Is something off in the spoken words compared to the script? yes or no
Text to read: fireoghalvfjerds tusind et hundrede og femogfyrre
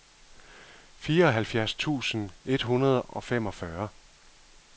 no